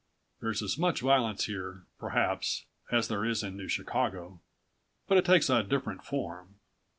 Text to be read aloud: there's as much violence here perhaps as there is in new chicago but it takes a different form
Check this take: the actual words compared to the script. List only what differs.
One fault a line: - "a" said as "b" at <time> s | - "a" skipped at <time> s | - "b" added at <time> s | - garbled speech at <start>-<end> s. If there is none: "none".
none